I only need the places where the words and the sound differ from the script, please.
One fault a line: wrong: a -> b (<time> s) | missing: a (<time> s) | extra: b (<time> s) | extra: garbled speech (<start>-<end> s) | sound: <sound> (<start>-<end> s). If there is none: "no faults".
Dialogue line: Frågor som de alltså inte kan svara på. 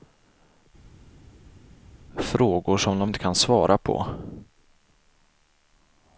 missing: alltså (3.1 s)